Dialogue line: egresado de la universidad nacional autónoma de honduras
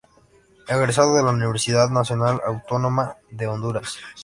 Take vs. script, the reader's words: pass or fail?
pass